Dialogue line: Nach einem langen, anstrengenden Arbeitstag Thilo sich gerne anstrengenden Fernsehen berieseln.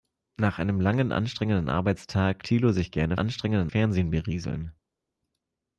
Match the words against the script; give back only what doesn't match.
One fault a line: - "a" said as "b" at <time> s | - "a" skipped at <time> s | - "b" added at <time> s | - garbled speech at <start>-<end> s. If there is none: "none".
none